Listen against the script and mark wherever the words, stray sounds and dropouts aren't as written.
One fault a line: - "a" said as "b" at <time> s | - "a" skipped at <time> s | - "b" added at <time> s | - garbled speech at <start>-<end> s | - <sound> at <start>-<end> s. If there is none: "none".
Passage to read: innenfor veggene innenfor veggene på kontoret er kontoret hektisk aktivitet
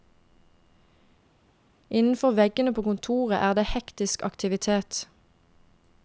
- "innenfor veggene" skipped at 2.7 s
- "kontoret" said as "det" at 3.5 s